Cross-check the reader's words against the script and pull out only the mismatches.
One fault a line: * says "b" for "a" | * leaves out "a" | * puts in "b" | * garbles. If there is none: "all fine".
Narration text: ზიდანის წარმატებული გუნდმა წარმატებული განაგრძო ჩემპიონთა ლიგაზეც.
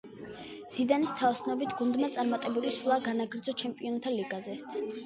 * says "თაოსნობით" for "წარმატებული"
* puts in "სვლა"